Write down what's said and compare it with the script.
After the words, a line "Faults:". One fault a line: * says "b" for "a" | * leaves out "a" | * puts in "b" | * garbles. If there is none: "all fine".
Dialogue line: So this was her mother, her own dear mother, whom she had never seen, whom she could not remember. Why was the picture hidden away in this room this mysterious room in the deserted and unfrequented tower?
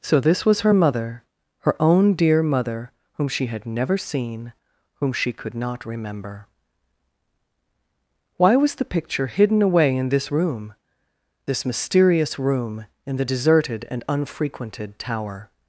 So this was her mother, her own dear mother, whom she had never seen, whom she could not remember. Why was the picture hidden away in this room this mysterious room in the deserted and unfrequented tower?
Faults:
all fine